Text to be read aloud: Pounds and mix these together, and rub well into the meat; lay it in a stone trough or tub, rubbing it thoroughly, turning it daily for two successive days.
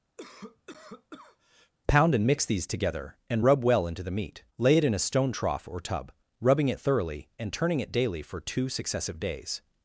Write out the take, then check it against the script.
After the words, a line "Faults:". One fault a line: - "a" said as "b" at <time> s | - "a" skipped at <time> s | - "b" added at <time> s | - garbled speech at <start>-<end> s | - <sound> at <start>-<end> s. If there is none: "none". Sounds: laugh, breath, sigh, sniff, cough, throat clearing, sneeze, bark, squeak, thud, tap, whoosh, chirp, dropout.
Pound and mix these together, and rub well into the meat; lay it in a stone trough or tub, rubbing it thoroughly, and turning it daily for two successive days.
Faults:
- cough at 0.2-1.7 s
- "Pounds" said as "Pound" at 1.9 s
- "and" added at 7.4 s